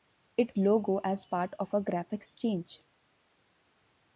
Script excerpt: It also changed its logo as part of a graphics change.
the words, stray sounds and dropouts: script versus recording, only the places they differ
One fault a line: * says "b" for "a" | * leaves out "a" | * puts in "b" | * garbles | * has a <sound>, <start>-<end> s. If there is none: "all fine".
* leaves out "also changed its"